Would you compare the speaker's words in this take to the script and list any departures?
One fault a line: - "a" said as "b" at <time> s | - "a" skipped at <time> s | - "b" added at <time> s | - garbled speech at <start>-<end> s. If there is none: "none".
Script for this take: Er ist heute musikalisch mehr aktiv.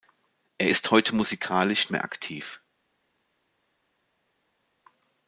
none